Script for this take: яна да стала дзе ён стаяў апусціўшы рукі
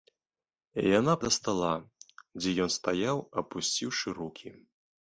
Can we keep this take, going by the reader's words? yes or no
yes